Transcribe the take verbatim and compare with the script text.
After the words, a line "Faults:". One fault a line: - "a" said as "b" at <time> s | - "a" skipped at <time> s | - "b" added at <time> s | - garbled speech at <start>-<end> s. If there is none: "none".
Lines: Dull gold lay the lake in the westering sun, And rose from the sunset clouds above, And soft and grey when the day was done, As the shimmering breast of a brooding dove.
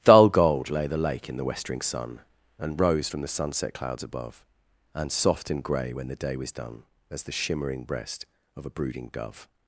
Dull gold lay the lake in the westering sun, And rose from the sunset clouds above, And soft and grey when the day was done, As the shimmering breast of a brooding dove.
Faults:
none